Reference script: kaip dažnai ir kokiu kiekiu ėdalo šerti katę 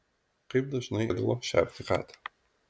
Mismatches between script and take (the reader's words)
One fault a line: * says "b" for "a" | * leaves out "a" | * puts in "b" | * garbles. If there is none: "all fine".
* leaves out "ir kokiu kiekiu"